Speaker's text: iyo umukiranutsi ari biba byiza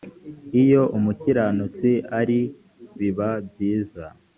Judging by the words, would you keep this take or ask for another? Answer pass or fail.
pass